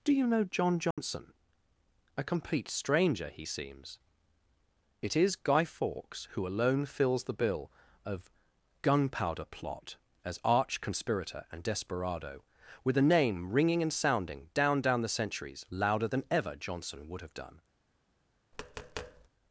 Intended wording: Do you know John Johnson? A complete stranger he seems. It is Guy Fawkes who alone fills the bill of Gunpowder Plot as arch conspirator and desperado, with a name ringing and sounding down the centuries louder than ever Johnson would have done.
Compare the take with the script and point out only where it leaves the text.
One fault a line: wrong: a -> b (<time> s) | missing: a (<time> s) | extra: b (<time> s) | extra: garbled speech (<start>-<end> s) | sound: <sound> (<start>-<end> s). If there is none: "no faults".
sound: dropout (0.9-1.0 s)
extra: down (14.8 s)
sound: tap (18.5-19.3 s)